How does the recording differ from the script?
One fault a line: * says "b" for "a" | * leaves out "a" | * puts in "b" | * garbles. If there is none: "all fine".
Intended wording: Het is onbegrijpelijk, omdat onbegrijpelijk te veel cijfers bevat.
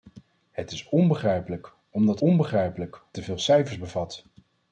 all fine